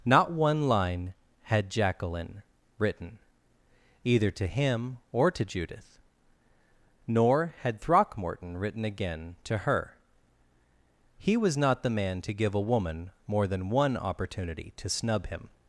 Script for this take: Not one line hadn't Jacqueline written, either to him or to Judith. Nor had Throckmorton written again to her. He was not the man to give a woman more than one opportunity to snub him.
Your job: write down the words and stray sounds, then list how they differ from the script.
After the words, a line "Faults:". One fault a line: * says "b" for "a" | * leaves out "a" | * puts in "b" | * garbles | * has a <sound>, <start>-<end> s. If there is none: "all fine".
Not one line had Jacqueline written, either to him or to Judith. Nor had Throckmorton written again to her. He was not the man to give a woman more than one opportunity to snub him.
Faults:
* says "had" for "hadn't"